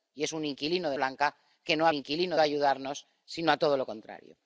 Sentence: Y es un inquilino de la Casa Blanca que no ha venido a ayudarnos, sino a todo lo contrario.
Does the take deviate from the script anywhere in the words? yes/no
yes